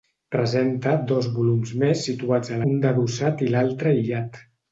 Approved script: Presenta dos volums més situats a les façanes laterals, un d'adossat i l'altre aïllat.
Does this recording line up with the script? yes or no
no